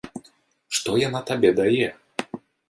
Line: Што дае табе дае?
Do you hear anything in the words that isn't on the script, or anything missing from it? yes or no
yes